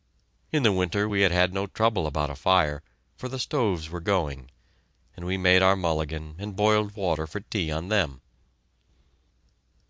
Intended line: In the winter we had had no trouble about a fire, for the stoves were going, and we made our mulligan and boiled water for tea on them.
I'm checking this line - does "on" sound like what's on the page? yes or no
yes